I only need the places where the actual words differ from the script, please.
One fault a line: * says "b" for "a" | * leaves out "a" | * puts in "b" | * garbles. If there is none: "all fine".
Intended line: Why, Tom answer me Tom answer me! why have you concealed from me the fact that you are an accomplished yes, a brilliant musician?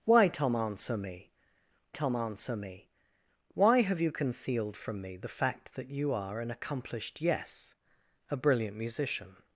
all fine